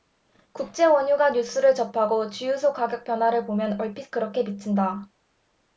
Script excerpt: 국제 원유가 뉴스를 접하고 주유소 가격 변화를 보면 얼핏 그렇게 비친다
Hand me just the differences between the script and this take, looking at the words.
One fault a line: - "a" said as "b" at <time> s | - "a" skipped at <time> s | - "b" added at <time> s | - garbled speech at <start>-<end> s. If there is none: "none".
none